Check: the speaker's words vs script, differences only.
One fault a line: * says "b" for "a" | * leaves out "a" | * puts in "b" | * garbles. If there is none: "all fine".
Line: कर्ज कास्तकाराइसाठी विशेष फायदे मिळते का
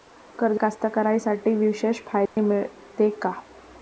all fine